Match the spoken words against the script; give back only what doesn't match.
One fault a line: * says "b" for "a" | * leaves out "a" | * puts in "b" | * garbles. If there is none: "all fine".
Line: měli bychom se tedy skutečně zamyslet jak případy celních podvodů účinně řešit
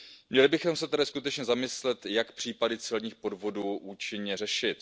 all fine